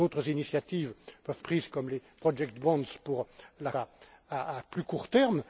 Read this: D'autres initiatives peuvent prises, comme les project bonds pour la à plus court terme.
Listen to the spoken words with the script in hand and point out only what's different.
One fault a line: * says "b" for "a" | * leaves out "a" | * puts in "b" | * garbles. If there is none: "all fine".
all fine